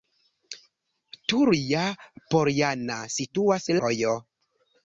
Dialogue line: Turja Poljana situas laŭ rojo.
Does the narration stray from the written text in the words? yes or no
yes